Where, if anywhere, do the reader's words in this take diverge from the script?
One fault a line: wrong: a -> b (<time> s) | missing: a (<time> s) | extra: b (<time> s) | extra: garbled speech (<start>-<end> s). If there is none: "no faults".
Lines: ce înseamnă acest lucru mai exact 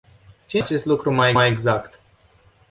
missing: înseamnă (0.6 s)
extra: mai (1.3 s)